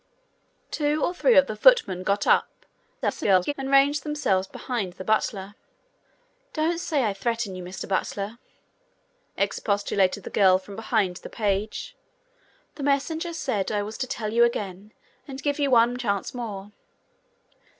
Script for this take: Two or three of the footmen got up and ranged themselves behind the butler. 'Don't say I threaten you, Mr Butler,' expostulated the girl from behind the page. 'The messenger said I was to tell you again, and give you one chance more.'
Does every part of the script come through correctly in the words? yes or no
no